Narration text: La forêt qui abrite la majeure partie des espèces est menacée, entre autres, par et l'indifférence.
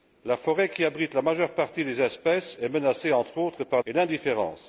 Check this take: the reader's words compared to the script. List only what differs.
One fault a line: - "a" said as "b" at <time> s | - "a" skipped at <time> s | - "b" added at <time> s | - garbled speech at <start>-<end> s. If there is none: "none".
none